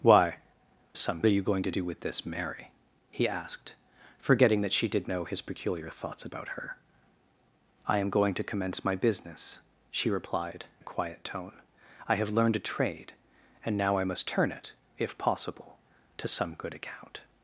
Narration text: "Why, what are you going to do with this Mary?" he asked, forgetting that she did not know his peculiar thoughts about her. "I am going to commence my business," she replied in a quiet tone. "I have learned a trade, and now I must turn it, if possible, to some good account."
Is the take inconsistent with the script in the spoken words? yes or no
yes